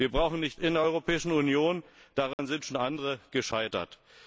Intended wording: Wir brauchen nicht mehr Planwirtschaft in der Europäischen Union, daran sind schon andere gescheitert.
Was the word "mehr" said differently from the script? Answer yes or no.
yes